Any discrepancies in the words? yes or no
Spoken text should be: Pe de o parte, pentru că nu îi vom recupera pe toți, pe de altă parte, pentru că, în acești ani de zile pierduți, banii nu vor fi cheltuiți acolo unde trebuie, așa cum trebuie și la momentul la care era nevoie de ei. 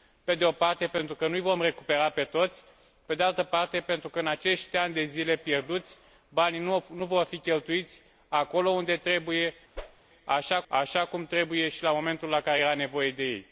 yes